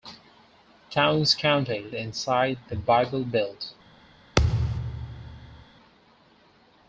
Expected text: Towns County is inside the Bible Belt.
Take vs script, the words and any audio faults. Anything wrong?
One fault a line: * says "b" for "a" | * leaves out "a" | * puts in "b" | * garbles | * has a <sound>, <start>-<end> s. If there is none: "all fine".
* leaves out "is"
* has a thud, 4.4-5.7 s